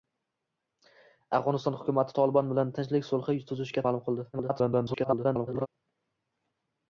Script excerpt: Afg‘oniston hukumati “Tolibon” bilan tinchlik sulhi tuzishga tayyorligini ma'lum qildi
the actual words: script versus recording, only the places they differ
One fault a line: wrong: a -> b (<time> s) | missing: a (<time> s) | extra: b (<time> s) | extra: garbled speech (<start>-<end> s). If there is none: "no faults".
missing: tayyorligini (3.8 s)
extra: garbled speech (4.3-5.7 s)